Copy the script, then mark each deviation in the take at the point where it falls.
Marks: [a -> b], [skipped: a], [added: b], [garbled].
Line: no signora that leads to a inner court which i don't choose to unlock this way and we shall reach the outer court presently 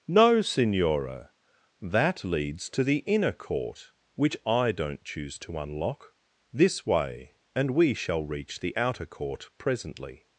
no signora that leads to [a -> the] inner court which i don't choose to unlock this way and we shall reach the outer court presently